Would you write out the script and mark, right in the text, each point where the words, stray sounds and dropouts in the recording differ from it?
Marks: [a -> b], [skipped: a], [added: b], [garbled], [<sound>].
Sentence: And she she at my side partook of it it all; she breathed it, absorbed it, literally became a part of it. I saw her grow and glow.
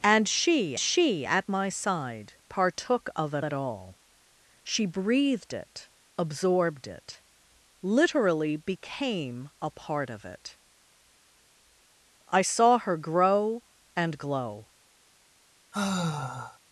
And she she at my side partook of it it all; she breathed it, absorbed it, literally became a part of it. I saw her grow and glow. [sigh]